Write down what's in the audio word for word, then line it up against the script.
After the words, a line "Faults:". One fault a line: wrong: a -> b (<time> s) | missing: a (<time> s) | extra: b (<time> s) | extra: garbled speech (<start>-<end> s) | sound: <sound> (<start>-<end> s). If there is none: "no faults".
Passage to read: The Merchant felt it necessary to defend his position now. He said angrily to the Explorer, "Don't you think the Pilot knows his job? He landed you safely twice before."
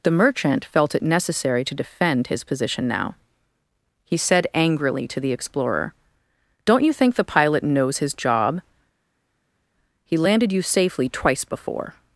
The Merchant felt it necessary to defend his position now. He said angrily to the Explorer, "Don't you think the Pilot knows his job? He landed you safely twice before."
Faults:
no faults